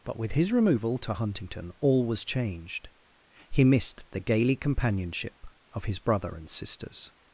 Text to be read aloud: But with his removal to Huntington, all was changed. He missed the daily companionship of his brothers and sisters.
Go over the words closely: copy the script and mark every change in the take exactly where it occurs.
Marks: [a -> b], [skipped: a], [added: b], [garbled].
But with his removal to Huntington, all was changed. He missed the [daily -> gaily] companionship of his [brothers -> brother] and sisters.